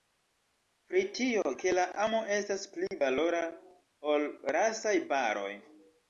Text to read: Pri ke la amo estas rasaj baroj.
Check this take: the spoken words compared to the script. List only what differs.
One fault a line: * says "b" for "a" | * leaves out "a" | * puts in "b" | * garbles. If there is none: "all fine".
* puts in "tio"
* puts in "pli valora ol"